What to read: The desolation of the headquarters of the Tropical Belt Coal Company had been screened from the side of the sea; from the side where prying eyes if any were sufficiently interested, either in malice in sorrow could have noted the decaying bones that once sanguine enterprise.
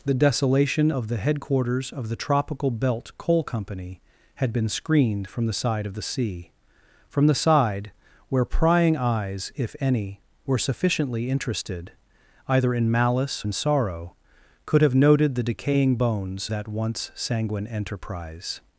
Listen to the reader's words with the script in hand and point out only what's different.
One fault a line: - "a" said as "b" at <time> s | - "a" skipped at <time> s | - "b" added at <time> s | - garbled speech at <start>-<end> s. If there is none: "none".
none